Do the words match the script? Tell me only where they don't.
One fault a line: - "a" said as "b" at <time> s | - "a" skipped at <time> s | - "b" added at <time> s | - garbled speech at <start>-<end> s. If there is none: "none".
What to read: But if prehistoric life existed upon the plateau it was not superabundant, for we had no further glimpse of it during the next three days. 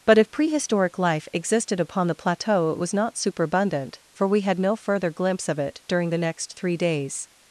none